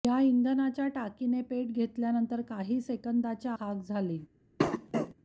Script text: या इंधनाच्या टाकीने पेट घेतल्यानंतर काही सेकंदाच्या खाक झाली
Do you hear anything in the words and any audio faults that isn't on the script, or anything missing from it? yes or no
yes